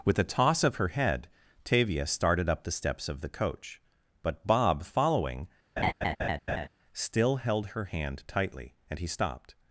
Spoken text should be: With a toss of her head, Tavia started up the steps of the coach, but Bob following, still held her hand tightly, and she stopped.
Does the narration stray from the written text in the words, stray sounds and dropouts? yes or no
yes